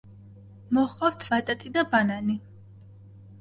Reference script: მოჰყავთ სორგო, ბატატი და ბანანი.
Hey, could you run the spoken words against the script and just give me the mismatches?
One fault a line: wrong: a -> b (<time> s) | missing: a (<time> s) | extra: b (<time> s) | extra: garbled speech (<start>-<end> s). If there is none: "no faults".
missing: სორგო (1.2 s)